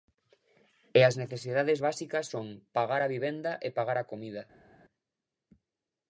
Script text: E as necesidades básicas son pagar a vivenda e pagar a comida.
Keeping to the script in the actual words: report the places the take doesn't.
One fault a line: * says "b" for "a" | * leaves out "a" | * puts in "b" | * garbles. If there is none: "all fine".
all fine